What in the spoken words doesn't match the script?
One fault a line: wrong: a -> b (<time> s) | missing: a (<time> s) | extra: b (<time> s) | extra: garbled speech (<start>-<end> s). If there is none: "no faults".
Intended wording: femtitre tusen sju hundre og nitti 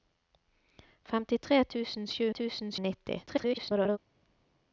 wrong: hundre -> tusen (2.4 s)
extra: garbled speech (3.3-4.0 s)